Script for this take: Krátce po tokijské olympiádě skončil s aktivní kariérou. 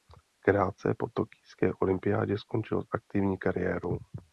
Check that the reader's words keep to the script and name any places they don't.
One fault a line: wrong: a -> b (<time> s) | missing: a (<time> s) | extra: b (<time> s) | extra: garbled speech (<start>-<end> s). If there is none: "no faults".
no faults